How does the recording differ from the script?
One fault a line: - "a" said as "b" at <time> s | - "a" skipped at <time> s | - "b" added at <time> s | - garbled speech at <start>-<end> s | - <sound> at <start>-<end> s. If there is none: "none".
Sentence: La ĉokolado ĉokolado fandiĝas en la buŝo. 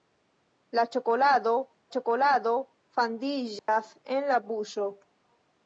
- dropout at 3.6-3.7 s